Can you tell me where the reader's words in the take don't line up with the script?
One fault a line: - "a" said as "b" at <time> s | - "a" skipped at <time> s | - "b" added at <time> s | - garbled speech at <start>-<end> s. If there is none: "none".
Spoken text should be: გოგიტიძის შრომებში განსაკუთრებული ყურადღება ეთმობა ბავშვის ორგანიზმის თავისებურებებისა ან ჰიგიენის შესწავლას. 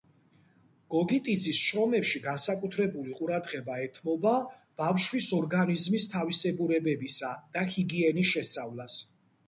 - "ან" said as "და" at 7.6 s